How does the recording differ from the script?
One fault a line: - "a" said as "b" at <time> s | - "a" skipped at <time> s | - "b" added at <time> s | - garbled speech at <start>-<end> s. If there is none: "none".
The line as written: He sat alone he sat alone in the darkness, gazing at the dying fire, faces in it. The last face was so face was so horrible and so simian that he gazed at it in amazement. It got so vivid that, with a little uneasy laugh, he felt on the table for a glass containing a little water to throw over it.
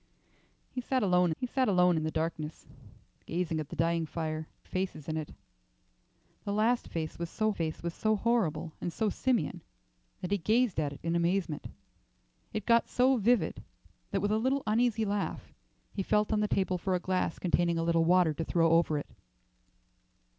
none